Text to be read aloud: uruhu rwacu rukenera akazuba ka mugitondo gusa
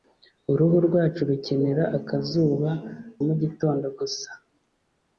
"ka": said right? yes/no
no